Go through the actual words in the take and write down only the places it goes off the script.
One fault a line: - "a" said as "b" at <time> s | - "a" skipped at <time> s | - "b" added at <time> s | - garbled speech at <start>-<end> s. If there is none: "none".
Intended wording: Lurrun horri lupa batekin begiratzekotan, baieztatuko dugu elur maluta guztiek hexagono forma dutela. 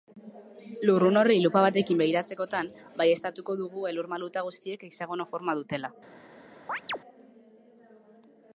none